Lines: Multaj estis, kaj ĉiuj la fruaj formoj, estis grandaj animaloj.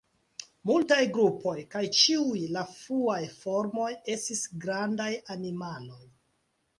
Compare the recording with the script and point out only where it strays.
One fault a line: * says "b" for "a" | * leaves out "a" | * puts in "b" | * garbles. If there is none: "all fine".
* says "grupoj" for "estis"